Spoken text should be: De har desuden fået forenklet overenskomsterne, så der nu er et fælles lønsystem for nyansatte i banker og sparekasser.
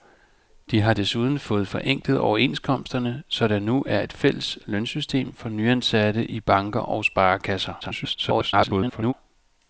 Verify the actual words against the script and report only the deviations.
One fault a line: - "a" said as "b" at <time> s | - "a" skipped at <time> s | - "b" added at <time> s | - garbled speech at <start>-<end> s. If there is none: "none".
- garbled speech at 7.8-9.1 s